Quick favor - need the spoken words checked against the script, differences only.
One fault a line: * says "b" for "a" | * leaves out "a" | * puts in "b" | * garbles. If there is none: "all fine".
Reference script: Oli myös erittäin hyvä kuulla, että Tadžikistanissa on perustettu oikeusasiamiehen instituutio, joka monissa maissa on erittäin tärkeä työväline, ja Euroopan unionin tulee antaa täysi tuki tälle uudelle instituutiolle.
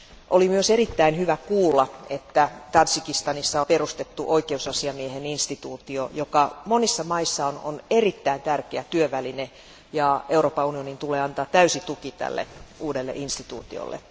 * leaves out "on"